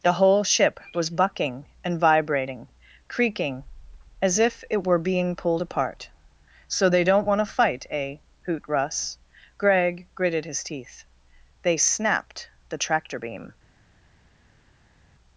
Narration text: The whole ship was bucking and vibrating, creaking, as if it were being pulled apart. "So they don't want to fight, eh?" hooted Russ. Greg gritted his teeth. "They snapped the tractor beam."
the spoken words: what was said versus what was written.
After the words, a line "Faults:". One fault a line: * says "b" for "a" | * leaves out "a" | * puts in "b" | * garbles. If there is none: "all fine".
The whole ship was bucking and vibrating, creaking, as if it were being pulled apart. "So they don't want to fight, eh?" hoot Russ. Greg gritted his teeth. "They snapped the tractor beam."
Faults:
* says "hoot" for "hooted"